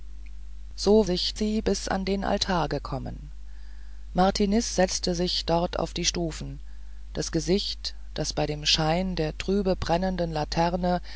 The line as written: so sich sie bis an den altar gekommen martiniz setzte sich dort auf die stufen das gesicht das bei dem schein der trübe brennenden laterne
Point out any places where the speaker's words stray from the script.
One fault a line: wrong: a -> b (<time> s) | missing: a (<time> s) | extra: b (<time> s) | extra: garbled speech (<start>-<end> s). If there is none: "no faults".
no faults